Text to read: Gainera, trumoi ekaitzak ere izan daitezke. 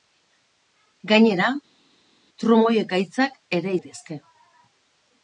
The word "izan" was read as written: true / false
false